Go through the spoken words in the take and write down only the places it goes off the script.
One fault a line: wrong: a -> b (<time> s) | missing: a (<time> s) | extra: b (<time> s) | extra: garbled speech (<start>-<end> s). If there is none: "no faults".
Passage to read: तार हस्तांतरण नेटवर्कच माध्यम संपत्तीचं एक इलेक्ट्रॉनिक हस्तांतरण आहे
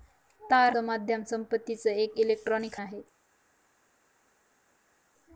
missing: हस्तांतरण नेटवर्कच (0.7 s)
missing: हस्तांतरण (2.8 s)